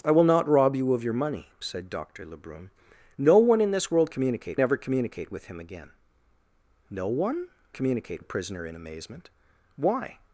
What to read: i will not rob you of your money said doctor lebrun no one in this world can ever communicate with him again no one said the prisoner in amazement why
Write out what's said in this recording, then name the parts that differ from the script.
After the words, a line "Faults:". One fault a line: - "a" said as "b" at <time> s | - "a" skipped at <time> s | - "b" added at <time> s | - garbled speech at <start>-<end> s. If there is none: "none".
i will not rob you of your money said doctor lebrun no one in this world communicate ever communicate with him again no one communicate the prisoner in amazement why
Faults:
- "can" said as "communicate" at 4.1 s
- "said" said as "communicate" at 7.7 s